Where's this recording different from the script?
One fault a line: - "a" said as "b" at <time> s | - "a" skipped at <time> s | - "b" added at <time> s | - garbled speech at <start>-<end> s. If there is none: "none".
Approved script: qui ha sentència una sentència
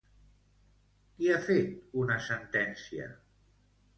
- "sentència" said as "fet" at 1.5 s